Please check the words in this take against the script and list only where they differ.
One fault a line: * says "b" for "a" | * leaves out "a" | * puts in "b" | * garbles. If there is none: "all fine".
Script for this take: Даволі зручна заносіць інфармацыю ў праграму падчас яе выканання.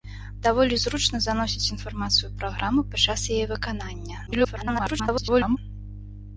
* garbles